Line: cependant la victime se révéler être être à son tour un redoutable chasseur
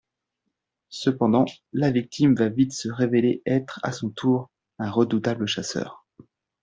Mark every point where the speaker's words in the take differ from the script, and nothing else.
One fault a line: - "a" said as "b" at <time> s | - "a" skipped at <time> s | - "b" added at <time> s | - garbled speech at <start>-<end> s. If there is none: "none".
- "va vite" added at 2.3 s
- "être" skipped at 3.8 s